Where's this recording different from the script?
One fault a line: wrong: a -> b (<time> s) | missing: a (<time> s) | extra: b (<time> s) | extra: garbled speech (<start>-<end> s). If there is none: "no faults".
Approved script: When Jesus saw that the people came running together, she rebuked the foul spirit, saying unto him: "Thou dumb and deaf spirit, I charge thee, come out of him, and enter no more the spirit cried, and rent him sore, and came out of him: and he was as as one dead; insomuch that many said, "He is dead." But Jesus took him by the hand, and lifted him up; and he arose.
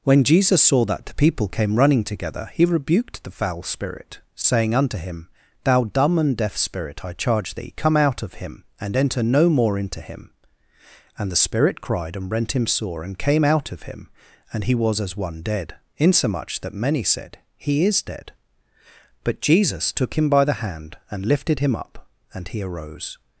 wrong: she -> he (2.5 s)
extra: into him And (9.8 s)
missing: as (15.2 s)